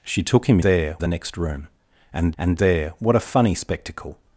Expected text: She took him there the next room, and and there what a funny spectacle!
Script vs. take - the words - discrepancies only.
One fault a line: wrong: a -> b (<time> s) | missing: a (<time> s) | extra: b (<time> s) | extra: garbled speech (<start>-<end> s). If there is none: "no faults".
no faults